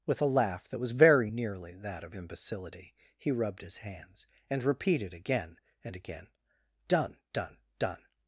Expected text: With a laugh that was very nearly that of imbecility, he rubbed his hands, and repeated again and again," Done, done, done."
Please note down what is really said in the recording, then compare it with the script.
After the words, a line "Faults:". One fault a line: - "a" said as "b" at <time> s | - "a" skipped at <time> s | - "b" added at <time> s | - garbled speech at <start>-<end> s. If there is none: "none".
With a laugh that was very nearly that of imbecility, he rubbed his hands, and repeated again and again," Done, done, done."
Faults:
none